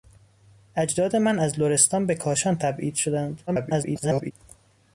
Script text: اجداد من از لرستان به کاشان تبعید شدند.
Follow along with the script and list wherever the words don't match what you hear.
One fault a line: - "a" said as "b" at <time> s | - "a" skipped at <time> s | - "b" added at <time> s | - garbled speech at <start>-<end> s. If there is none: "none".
- garbled speech at 3.5-4.3 s